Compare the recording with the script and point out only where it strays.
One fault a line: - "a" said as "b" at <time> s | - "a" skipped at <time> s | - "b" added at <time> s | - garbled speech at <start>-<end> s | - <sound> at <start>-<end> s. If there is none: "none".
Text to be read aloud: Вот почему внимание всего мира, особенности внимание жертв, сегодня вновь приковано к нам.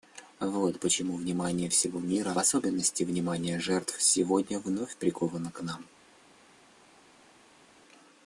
none